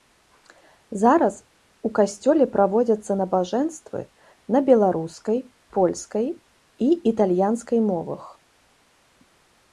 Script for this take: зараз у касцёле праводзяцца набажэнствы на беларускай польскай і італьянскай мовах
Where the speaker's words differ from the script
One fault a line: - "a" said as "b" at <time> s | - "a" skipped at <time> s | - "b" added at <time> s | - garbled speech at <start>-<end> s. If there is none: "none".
none